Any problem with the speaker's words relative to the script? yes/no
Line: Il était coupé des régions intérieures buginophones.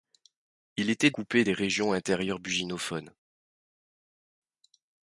no